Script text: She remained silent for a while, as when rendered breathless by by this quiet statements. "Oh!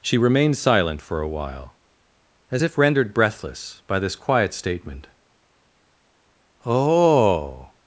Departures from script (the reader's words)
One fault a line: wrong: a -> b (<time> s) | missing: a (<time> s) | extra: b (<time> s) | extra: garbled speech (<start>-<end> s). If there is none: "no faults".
wrong: when -> if (2.6 s)
missing: by (4.0 s)
wrong: statements -> statement (4.5 s)